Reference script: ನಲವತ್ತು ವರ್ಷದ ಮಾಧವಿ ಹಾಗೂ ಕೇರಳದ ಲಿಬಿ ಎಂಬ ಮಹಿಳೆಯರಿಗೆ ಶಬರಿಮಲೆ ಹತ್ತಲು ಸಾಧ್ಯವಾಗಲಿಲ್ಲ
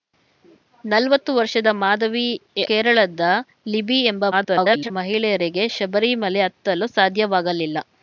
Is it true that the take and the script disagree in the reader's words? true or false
true